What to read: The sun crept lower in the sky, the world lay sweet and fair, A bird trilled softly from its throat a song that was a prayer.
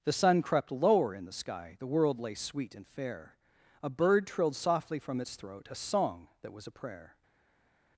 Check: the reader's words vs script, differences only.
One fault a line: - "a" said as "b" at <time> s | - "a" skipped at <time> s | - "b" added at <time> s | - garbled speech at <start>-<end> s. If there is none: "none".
none